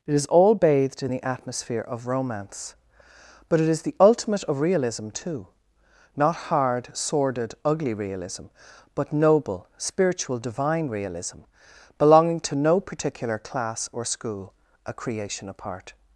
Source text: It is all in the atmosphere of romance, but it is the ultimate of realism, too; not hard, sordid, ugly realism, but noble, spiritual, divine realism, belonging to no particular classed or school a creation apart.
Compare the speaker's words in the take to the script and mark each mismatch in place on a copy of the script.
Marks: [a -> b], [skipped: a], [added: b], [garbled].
It is all [added: bathed] in the atmosphere of romance, but it is the ultimate of realism, too; not hard, sordid, ugly realism, but noble, spiritual, divine realism, belonging to no particular [classed -> class] or school a creation apart.